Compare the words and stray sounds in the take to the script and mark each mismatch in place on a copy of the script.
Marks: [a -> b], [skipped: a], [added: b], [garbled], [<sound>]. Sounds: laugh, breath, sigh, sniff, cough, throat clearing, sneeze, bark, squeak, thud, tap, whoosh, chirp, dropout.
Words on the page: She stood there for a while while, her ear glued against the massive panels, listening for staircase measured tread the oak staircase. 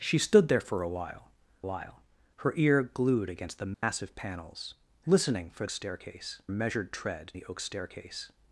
She stood there for a while while, her ear glued against the massive [dropout] panels, listening for staircase measured tread the oak staircase.